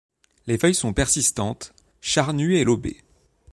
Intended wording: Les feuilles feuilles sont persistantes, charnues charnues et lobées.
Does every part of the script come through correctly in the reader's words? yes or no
no